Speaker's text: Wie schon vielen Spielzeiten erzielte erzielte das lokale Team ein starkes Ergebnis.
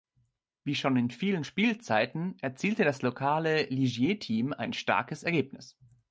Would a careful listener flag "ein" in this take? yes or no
no